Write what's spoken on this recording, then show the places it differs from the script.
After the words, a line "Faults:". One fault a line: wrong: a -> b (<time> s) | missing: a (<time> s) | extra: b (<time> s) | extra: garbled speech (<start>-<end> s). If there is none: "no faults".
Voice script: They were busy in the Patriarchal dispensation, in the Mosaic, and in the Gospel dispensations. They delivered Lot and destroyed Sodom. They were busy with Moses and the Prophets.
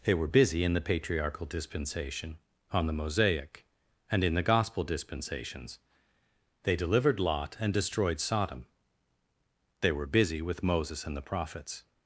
They were busy in the Patriarchal dispensation, on the Mosaic, and in the Gospel dispensations. They delivered Lot and destroyed Sodom. They were busy with Moses and the Prophets.
Faults:
wrong: in -> on (2.7 s)